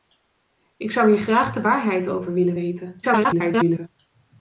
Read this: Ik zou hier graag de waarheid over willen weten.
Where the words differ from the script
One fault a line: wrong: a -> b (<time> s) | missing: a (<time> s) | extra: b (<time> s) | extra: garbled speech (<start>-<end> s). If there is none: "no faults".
extra: garbled speech (3.0-3.9 s)